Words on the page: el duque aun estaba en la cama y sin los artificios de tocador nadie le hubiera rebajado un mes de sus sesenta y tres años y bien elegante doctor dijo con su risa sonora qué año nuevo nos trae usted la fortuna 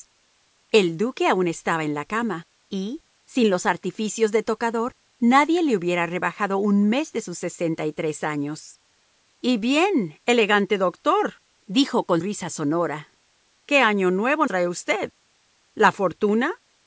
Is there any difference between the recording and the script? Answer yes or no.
yes